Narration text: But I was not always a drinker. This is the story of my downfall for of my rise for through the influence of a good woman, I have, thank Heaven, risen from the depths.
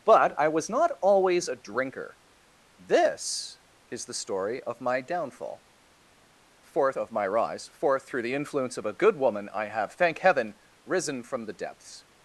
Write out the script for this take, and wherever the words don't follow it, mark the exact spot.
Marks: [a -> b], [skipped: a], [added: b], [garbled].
But I was not always a drinker. This is the story of my downfall for of my rise for through the influence of a good woman, I have, thank Heaven, risen from the depths.